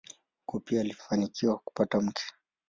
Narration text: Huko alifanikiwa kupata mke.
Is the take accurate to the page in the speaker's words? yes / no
no